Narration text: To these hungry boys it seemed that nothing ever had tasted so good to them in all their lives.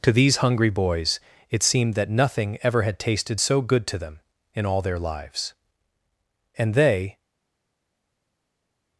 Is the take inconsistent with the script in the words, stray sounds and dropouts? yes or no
yes